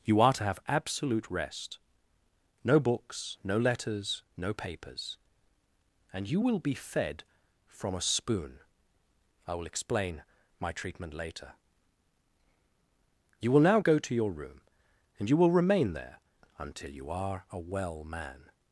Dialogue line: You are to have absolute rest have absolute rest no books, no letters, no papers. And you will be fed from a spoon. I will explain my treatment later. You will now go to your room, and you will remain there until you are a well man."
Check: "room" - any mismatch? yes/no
no